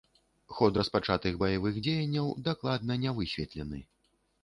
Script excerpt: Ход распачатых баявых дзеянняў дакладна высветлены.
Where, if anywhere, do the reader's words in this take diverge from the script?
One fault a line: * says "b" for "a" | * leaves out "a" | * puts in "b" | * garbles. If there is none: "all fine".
* puts in "не"